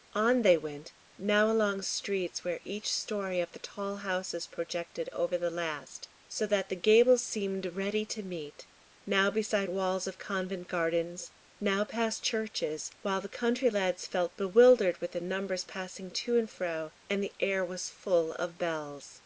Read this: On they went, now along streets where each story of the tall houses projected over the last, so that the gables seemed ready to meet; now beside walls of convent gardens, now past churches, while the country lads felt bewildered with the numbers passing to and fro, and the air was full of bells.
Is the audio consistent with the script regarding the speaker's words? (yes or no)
yes